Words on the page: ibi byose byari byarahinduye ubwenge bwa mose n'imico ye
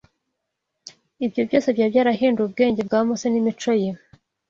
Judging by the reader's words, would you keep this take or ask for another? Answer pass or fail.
fail